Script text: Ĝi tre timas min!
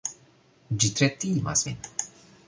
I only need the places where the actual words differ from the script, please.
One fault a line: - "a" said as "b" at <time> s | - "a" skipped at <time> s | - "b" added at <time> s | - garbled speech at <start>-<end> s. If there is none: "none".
none